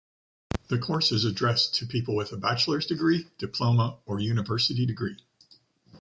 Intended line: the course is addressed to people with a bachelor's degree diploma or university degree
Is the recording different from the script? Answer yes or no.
no